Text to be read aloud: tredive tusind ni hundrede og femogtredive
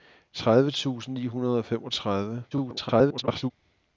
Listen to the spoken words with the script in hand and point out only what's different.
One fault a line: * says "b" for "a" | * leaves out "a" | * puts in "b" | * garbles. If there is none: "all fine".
* garbles